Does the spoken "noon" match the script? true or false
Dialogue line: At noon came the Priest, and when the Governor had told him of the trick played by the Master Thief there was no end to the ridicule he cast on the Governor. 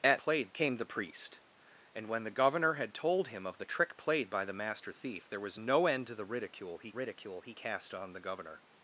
false